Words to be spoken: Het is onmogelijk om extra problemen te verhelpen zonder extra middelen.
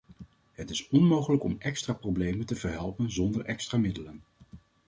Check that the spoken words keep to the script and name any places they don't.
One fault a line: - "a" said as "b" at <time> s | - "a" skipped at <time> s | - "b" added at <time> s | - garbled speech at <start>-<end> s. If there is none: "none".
none